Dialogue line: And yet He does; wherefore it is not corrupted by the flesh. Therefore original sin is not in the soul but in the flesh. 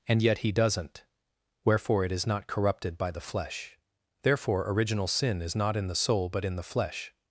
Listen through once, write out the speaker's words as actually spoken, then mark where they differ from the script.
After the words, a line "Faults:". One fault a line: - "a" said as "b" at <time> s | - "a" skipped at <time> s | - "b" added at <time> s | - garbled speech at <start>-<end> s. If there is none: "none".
And yet He doesn't; wherefore it is not corrupted by the flesh. Therefore original sin is not in the soul but in the flesh.
Faults:
- "does" said as "doesn't" at 0.5 s